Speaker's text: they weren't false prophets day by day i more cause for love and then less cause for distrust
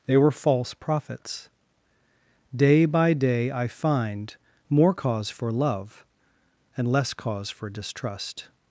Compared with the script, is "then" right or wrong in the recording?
wrong